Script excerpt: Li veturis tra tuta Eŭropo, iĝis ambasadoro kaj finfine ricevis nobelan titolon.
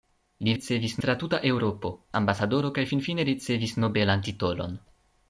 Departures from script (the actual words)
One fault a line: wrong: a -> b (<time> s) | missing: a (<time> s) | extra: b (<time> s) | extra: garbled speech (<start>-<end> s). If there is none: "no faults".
wrong: veturis -> ricevis (0.5 s)
missing: iĝis (1.9 s)